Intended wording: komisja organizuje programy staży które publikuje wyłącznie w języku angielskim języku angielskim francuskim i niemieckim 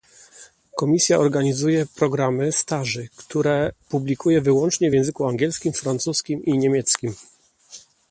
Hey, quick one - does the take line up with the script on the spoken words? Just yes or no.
no